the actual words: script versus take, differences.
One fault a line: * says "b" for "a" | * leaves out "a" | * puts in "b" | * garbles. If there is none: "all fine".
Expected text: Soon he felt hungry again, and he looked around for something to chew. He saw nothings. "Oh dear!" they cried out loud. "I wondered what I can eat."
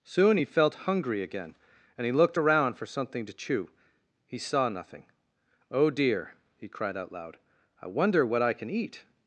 * says "nothing" for "nothings"
* says "he" for "they"
* says "wonder" for "wondered"